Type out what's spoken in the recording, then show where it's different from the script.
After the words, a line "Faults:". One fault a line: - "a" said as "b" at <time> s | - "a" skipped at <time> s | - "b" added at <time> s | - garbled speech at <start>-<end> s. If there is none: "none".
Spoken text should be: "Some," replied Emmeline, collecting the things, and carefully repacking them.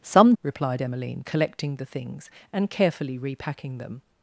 "Some," replied Emmeline, collecting the things, and carefully repacking them.
Faults:
none